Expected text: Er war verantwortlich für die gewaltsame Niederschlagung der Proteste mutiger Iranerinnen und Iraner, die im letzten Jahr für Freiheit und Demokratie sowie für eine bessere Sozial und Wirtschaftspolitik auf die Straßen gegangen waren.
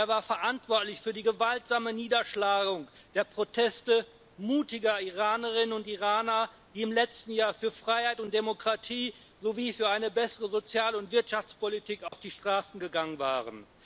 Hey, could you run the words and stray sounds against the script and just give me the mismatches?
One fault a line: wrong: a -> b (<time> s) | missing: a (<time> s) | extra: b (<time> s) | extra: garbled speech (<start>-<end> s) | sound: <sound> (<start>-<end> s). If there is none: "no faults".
sound: dropout (12.1-12.1 s)